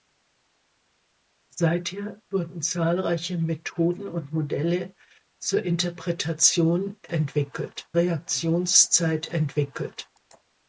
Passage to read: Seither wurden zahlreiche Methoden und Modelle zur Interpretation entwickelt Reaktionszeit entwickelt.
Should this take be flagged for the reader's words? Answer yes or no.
no